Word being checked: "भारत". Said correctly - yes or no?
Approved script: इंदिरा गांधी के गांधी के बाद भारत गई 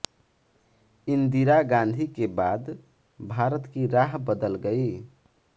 no